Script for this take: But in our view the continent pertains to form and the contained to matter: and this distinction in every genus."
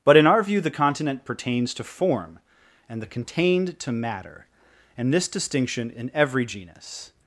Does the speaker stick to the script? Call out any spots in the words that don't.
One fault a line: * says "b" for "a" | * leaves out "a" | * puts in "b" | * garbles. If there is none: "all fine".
all fine